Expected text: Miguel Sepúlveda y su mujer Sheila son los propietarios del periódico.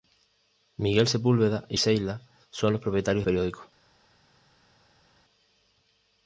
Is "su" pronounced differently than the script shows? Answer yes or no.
yes